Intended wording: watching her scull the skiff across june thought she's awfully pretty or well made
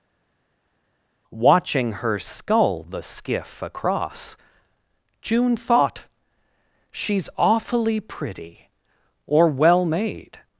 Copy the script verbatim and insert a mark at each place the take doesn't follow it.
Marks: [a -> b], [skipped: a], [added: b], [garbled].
watching her scull the skiff across june thought she's awfully pretty or well made